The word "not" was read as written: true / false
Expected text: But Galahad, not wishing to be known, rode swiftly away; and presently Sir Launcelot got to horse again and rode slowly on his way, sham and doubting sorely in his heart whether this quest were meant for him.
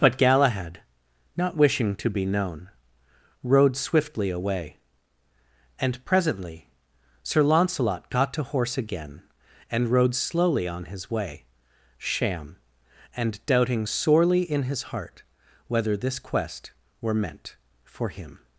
true